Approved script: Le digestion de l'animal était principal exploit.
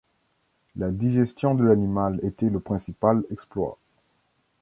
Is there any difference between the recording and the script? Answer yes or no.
yes